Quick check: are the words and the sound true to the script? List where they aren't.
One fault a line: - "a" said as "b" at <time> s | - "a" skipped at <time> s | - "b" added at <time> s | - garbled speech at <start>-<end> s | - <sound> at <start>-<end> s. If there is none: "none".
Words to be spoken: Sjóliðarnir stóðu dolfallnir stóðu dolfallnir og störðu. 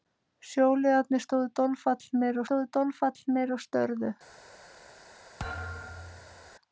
- thud at 5.4-6.5 s